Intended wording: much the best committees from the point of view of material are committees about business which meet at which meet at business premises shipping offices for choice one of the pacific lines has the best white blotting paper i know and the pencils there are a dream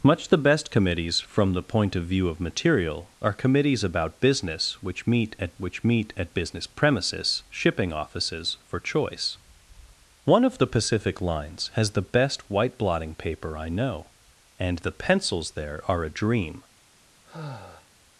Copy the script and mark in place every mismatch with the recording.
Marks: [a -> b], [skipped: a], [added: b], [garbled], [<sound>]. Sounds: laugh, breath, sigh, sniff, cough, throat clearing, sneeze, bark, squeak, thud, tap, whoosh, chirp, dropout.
much the best committees from the point of view of material are committees about business which meet at which meet at business premises shipping offices for choice one of the pacific lines has the best white blotting paper i know and the pencils there are a dream [sigh]